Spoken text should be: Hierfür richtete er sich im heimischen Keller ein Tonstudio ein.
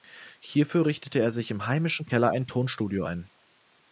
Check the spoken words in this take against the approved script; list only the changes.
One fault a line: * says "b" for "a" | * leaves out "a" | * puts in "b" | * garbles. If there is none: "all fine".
all fine